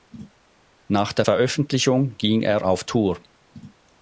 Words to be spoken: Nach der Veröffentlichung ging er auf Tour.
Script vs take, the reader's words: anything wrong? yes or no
no